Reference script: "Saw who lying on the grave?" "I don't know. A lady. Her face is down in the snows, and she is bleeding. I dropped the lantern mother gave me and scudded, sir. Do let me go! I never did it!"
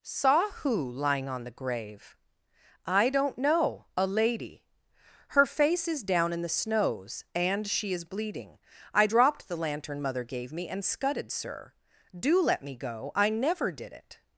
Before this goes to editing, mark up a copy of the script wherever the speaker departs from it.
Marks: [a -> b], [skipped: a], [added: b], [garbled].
"Saw who lying on the grave?" "I don't know. A lady. Her face is down in the snows, and she is bleeding. I dropped the lantern mother gave me and scudded, sir. Do let me go! I never did it!"